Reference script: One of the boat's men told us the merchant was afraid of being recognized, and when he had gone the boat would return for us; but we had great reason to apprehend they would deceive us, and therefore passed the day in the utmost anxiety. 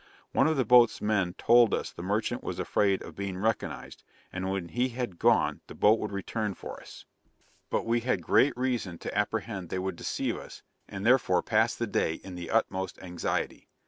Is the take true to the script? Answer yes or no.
yes